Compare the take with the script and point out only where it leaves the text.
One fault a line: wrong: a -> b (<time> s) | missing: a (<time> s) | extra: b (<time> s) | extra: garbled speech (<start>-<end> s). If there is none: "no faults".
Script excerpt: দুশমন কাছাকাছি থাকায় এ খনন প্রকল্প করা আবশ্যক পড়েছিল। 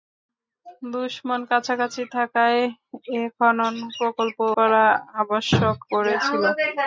no faults